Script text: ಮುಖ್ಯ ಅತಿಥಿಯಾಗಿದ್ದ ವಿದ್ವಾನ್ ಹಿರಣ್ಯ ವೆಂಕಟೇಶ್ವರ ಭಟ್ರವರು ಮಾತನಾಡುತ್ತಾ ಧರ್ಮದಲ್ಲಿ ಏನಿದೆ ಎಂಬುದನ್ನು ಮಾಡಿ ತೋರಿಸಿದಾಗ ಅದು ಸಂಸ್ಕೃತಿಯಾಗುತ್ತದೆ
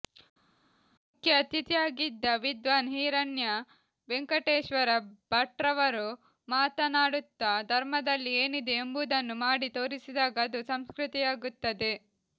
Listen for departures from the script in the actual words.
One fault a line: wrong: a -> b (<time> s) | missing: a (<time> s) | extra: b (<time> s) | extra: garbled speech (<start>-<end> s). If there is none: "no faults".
no faults